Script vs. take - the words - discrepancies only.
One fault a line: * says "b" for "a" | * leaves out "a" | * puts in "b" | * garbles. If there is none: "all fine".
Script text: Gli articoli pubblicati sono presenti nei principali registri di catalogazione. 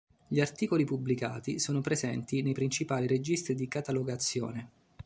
all fine